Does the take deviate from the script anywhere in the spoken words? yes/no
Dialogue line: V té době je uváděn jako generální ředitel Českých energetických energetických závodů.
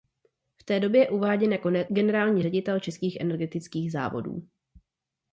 yes